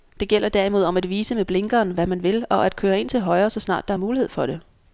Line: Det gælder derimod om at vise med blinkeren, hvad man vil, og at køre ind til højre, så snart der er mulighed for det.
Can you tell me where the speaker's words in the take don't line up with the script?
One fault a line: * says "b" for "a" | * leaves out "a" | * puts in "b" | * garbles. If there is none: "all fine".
all fine